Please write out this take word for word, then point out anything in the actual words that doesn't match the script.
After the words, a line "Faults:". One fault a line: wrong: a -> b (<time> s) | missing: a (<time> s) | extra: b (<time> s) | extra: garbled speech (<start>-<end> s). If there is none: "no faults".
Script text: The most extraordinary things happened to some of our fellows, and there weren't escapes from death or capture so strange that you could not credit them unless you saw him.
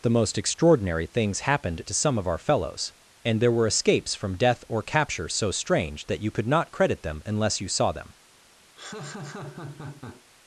The most extraordinary things happened to some of our fellows, and there were escapes from death or capture so strange that you could not credit them unless you saw them.
Faults:
wrong: weren't -> were (3.5 s)
wrong: him -> them (7.9 s)